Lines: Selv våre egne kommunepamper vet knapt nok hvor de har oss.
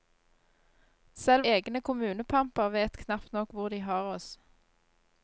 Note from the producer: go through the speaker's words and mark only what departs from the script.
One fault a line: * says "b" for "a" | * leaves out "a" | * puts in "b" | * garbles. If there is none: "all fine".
* leaves out "våre"